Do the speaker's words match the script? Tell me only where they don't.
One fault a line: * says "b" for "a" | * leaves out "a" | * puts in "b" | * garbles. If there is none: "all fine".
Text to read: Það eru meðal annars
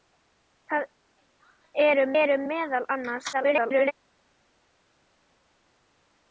* puts in "eru"
* garbles